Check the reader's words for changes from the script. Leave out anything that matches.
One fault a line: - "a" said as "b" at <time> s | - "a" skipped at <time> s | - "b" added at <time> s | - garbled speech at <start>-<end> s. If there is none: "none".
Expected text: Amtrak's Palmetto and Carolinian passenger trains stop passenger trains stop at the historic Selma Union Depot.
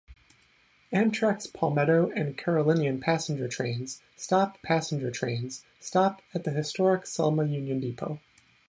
none